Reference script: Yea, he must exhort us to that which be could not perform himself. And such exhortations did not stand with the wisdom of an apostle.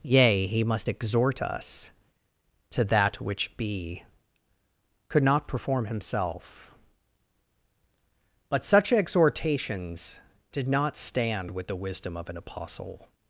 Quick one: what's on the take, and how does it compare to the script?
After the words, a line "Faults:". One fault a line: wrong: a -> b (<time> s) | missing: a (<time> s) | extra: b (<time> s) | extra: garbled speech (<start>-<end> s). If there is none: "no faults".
Yea, he must exhort us to that which be could not perform himself. But such exhortations did not stand with the wisdom of an apostle.
Faults:
wrong: And -> But (8.5 s)